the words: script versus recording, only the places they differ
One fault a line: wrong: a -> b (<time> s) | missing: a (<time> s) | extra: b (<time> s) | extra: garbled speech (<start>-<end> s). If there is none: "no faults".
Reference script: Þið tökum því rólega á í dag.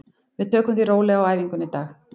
wrong: Þið -> Við (0.4 s)
extra: æfingunni (1.3 s)